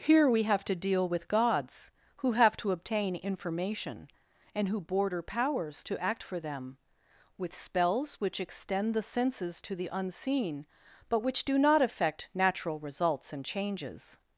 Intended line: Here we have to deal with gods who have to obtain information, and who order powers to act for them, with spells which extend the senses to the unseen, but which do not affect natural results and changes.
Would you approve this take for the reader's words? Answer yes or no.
no